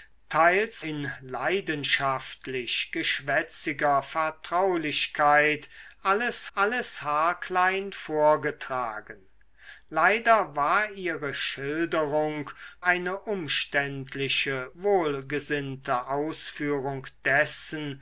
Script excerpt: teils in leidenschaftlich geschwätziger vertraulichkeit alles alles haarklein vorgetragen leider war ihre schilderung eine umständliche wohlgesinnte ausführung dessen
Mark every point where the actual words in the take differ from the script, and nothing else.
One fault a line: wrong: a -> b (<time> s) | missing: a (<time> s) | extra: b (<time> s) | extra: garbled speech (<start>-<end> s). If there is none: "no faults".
no faults